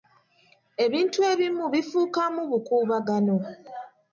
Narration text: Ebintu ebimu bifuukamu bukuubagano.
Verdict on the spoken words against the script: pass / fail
pass